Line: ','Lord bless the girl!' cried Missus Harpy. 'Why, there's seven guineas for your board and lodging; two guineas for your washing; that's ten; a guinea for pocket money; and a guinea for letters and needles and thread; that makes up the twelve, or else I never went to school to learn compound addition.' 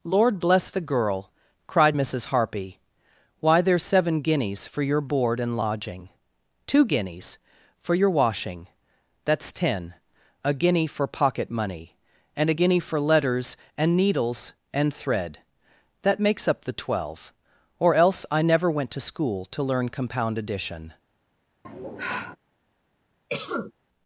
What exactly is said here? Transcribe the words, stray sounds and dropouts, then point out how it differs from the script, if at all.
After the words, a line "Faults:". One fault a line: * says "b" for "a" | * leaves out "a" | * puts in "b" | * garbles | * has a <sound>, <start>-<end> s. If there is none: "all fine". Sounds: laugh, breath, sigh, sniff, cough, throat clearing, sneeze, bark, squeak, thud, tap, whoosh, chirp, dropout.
','Lord bless the girl!' cried Missus Harpy. 'Why, there's seven guineas for your board and lodging; two guineas for your washing; that's ten; a guinea for pocket money; and a guinea for letters and needles and thread; that makes up the twelve, or else I never went to school to learn compound addition.'
Faults:
* has a sigh, 21.6-22.4 s
* has a cough, 23.3-23.7 s